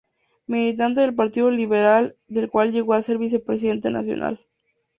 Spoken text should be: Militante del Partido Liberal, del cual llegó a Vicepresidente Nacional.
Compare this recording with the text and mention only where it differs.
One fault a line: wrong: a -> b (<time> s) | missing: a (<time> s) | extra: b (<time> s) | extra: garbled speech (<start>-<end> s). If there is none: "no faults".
extra: ser (3.0 s)